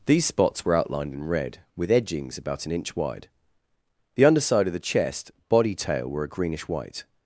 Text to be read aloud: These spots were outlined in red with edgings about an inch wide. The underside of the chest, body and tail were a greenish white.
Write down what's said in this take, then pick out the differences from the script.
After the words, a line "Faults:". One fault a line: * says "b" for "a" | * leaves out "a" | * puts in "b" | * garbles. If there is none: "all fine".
These spots were outlined in red with edgings about an inch wide. The underside of the chest, body tail were a greenish white.
Faults:
* leaves out "and"